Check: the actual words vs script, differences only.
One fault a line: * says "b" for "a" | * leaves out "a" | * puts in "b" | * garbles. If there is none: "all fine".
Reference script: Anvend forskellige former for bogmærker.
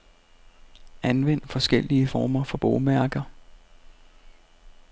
all fine